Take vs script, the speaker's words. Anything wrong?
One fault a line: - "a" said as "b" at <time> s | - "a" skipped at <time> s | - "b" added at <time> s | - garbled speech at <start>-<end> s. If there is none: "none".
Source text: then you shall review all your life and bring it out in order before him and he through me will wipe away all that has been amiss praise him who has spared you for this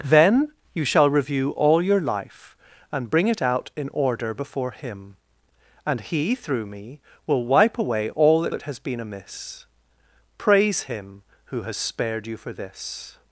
- "that" added at 8.5 s